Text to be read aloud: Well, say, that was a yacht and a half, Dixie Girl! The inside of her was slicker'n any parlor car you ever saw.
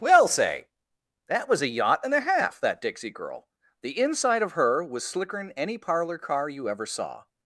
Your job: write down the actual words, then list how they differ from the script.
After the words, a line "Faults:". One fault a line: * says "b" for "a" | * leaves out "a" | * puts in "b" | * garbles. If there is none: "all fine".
Well, say, that was a yacht and a half, that Dixie Girl! The inside of her was slicker'n any parlor car you ever saw.
Faults:
* puts in "that"